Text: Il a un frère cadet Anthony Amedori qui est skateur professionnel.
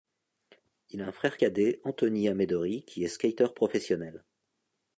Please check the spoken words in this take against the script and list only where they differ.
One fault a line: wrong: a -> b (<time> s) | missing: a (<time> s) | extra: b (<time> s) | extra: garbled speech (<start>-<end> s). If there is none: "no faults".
no faults